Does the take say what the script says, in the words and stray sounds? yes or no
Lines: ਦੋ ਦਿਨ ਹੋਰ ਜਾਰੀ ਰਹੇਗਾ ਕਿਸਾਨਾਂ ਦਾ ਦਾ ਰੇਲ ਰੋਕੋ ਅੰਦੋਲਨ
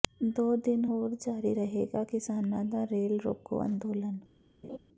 no